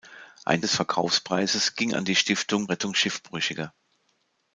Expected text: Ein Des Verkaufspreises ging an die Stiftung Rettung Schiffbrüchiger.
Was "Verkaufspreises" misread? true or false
false